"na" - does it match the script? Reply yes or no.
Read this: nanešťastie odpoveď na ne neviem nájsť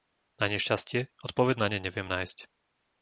yes